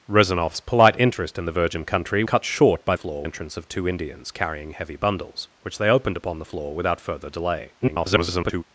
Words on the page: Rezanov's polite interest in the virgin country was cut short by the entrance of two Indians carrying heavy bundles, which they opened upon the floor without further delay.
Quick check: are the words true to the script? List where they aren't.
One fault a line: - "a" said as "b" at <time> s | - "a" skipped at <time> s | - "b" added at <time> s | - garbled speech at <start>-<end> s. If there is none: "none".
- "was" skipped at 2.2 s
- "the" said as "floor" at 3.0 s
- garbled speech at 7.8-8.6 s